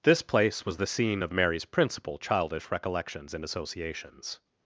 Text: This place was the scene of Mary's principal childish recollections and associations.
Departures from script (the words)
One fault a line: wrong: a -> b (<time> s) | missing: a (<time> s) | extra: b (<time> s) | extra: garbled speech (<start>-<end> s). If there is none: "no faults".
no faults